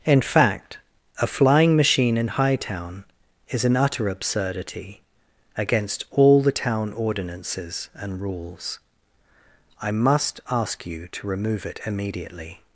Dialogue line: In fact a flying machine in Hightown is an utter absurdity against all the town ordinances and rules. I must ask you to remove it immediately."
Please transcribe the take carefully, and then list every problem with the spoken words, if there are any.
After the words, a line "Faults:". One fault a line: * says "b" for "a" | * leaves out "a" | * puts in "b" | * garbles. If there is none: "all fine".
In fact a flying machine in Hightown is an utter absurdity against all the town ordinances and rules. I must ask you to remove it immediately."
Faults:
all fine